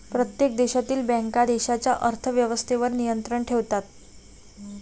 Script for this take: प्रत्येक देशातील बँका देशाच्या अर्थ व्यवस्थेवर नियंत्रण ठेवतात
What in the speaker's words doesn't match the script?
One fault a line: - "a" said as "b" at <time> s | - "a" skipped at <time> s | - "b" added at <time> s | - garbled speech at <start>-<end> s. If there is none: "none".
none